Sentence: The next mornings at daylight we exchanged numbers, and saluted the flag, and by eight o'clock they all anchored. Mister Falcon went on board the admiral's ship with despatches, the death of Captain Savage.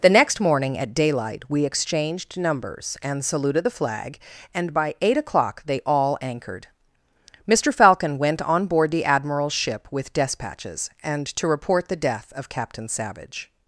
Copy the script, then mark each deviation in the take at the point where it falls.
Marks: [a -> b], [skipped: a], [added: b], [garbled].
The next [mornings -> morning] at daylight we exchanged numbers, and saluted the flag, and by eight o'clock they all anchored. Mister Falcon went on board the admiral's ship with despatches, [added: and to report] the death of Captain Savage.